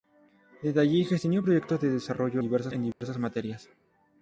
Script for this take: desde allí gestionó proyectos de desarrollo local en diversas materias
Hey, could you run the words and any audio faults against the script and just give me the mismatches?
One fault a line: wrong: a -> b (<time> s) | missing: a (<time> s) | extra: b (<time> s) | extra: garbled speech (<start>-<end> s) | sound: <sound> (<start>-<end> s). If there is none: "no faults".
wrong: local -> diversas (2.4 s)
sound: dropout (2.9-3.0 s)